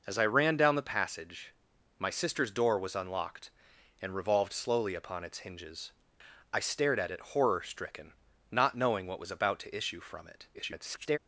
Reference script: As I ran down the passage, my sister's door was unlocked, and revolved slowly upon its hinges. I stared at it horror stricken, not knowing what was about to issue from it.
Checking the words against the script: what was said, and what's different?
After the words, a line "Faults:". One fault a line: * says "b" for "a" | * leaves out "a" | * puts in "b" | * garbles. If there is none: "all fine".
As I ran down the passage, my sister's door was unlocked, and revolved slowly upon its hinges. I stared at it horror stricken, not knowing what was about to issue from it. [garbled]
Faults:
* garbles